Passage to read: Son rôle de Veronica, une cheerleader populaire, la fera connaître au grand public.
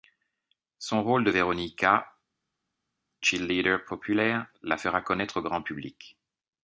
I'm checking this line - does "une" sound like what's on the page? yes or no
no